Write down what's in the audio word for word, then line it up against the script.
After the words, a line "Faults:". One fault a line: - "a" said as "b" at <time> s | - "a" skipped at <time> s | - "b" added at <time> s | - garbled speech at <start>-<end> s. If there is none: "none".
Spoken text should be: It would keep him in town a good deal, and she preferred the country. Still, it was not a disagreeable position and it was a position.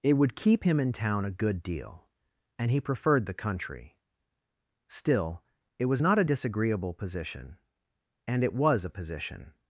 It would keep him in town a good deal, and he preferred the country. Still, it was not a disagreeable position and it was a position.
Faults:
- "she" said as "he" at 2.7 s